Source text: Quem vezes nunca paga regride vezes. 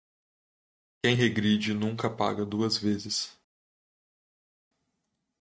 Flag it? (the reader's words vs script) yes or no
yes